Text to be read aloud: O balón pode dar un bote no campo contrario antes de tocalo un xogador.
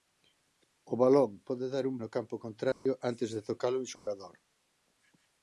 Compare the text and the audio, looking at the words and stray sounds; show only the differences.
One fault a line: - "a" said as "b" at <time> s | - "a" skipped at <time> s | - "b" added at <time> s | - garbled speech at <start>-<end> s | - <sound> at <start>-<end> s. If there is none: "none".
- "bote" skipped at 1.9 s
- dropout at 2.7-2.9 s
- dropout at 4.0-4.1 s